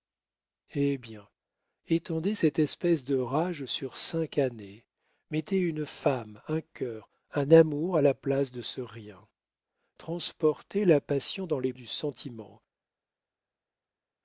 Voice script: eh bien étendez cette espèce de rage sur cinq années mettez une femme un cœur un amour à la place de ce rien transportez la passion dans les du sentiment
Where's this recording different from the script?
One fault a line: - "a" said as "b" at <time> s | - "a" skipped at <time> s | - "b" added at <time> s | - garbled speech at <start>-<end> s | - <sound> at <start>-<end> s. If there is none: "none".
none